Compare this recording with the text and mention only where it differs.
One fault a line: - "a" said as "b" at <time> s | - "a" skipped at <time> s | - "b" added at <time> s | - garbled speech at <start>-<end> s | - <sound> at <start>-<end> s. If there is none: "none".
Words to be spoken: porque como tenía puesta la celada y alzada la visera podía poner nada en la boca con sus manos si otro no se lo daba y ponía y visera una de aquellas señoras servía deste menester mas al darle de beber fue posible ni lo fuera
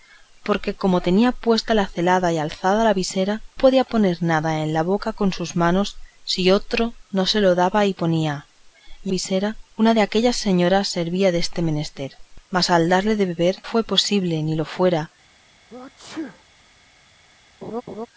- sneeze at 15.7-16.4 s
- laugh at 17.6-18.1 s